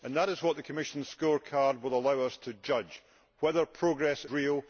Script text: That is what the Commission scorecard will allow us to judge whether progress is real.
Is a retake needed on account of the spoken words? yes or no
yes